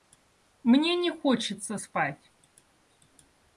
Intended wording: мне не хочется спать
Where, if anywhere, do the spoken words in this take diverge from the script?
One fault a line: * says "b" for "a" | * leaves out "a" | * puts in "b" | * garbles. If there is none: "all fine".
all fine